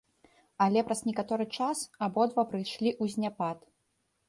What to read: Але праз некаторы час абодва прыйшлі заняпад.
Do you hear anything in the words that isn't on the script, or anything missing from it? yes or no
yes